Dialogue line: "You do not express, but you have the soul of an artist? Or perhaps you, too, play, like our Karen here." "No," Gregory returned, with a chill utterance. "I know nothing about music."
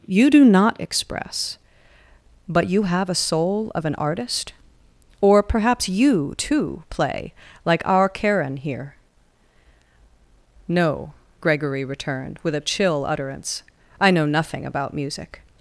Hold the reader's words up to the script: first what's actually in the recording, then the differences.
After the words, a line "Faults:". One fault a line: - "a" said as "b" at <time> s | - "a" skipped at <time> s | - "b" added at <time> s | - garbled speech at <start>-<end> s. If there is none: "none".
"You do not express, but you have a soul of an artist? Or perhaps you, too, play, like our Karen here." "No," Gregory returned, with a chill utterance. "I know nothing about music."
Faults:
- "the" said as "a" at 3.1 s